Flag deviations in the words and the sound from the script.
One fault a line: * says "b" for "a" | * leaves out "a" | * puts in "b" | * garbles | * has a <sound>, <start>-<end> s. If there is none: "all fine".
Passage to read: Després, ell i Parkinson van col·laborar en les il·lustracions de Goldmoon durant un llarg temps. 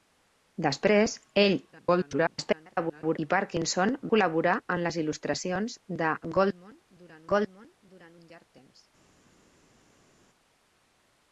* garbles
* leaves out "van"
* puts in "Goldmoon durant"